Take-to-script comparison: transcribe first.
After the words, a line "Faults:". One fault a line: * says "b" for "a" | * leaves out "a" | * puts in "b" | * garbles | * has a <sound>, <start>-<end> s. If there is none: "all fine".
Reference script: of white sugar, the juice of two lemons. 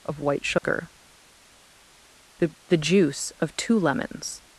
of white sugar, the the juice of two lemons.
Faults:
* has a dropout, 0.6-0.6 s
* puts in "the"